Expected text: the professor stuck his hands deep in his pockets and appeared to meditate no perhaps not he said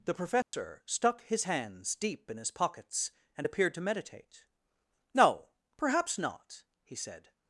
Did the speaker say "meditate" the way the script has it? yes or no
yes